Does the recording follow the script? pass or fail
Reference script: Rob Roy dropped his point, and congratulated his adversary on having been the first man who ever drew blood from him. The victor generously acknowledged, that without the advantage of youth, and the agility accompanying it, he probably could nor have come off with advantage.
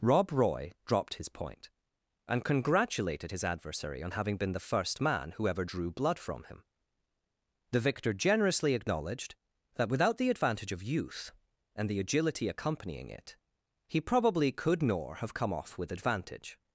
pass